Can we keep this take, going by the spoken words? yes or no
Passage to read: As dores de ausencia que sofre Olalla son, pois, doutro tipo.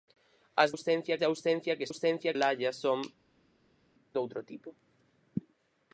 no